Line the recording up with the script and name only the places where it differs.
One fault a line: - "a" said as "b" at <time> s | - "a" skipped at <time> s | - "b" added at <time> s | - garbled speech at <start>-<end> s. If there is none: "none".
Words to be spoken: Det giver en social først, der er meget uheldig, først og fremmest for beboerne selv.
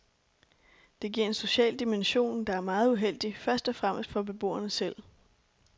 - "først" said as "dimension" at 1.8 s